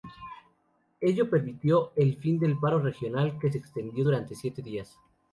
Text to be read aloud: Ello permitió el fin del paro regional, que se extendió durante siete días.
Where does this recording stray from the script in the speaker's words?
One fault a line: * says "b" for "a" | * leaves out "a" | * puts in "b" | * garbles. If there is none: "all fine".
all fine